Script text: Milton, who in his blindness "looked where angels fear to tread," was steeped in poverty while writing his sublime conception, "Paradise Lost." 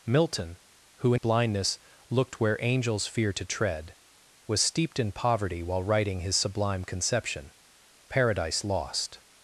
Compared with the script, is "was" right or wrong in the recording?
right